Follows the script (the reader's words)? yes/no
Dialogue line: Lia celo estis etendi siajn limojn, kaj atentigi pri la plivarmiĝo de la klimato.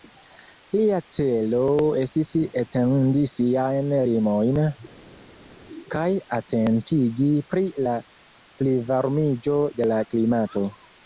yes